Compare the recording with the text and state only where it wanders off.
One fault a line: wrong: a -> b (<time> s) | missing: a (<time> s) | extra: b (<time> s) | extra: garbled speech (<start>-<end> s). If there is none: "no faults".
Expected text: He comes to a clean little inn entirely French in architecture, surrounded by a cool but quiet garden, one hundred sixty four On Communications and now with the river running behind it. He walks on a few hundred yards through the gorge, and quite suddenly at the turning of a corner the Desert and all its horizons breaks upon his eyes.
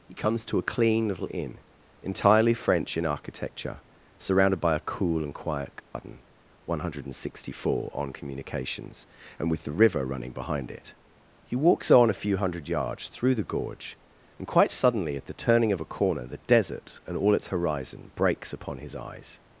wrong: but -> and (5.2 s)
missing: now (9.5 s)
wrong: horizons -> horizon (17.5 s)